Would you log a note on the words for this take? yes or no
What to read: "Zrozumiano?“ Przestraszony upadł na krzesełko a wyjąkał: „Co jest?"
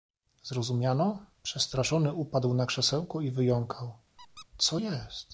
yes